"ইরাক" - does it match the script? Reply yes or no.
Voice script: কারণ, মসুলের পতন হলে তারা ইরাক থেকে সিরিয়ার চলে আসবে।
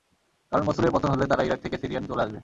yes